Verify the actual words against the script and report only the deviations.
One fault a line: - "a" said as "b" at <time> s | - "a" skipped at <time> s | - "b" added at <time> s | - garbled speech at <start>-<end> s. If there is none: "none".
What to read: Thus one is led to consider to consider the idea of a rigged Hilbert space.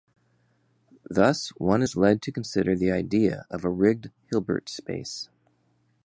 - "to consider" skipped at 2.7 s